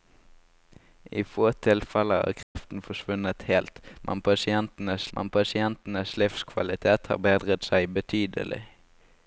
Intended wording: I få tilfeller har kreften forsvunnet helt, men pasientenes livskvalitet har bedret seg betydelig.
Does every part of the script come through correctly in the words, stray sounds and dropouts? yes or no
no